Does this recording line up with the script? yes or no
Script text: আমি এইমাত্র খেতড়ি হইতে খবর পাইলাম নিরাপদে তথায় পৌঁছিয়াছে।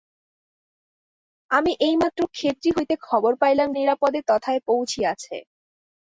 yes